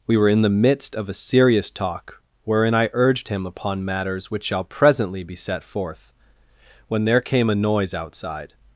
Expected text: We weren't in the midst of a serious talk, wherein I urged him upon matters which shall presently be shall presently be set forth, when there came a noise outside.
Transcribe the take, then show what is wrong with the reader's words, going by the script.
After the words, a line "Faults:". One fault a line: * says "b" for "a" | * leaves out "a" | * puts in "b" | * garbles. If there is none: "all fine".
We were in the midst of a serious talk, wherein I urged him upon matters which shall presently be set forth, when there came a noise outside.
Faults:
* says "were" for "weren't"
* leaves out "shall presently be"